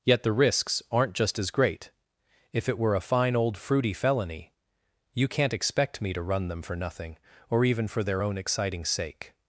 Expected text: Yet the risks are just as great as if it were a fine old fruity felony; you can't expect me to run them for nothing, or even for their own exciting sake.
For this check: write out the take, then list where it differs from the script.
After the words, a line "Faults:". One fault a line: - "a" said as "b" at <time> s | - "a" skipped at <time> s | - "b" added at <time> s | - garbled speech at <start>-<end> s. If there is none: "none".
Yet the risks aren't just as great if it were a fine old fruity felony; you can't expect me to run them for nothing, or even for their own exciting sake.
Faults:
- "are" said as "aren't" at 0.9 s
- "as" skipped at 1.9 s